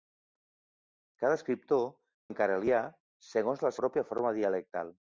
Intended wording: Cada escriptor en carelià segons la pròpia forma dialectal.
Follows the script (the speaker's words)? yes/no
yes